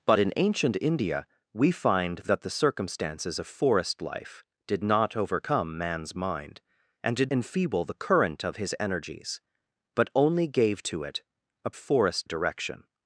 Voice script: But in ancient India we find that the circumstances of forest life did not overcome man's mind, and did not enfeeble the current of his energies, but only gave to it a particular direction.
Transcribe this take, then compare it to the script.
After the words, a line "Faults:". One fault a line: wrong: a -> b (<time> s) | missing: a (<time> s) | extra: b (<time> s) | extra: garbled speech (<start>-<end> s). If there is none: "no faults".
But in ancient India we find that the circumstances of forest life did not overcome man's mind, and did enfeeble the current of his energies, but only gave to it a forest direction.
Faults:
missing: not (7.3 s)
wrong: particular -> forest (11.8 s)